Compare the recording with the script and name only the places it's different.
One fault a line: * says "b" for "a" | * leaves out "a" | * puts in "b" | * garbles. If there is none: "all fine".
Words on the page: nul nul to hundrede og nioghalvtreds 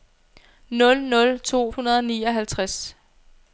all fine